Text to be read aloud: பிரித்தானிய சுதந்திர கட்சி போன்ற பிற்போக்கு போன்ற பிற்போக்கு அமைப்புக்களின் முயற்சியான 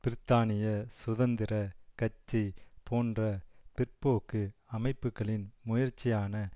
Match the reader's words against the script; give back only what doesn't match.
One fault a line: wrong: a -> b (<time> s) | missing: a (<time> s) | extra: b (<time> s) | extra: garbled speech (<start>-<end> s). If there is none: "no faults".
missing: போன்ற பிற்போக்கு (4.4 s)